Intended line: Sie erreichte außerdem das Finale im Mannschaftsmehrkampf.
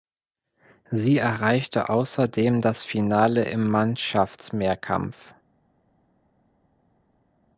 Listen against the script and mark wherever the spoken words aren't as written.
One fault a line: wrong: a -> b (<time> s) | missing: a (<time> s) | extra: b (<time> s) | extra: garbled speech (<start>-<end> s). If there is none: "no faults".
no faults